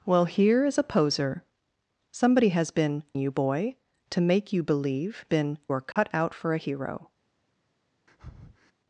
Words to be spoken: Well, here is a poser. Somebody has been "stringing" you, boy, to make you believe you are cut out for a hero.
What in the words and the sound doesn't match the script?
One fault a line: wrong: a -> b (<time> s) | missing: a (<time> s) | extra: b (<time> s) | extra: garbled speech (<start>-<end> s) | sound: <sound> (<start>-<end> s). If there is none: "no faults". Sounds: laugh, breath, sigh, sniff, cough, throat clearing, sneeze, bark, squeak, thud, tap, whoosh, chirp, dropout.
missing: stringing (3.0 s)
wrong: you -> been (5.3 s)
sound: dropout (5.9-6.0 s)
sound: breath (8.1-8.7 s)